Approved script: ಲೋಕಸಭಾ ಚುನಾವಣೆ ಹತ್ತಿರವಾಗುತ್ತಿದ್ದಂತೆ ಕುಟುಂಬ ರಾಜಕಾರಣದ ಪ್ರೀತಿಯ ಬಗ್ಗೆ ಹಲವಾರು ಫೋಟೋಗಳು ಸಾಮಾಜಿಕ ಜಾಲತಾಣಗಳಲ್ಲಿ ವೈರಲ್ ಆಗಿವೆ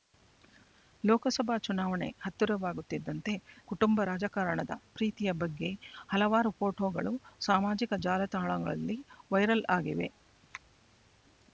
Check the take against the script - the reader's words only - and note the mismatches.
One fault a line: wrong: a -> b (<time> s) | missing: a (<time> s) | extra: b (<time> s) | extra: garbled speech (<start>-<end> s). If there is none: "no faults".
no faults